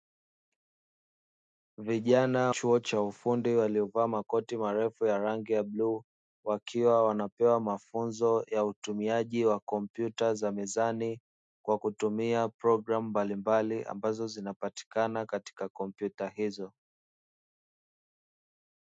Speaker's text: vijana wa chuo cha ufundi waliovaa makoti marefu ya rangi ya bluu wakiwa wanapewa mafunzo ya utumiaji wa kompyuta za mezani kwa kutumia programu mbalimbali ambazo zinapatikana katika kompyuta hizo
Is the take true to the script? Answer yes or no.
no